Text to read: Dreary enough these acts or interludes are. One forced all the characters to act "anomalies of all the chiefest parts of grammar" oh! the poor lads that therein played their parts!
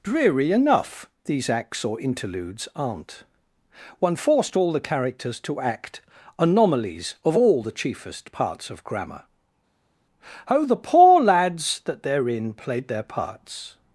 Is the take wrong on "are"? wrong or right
wrong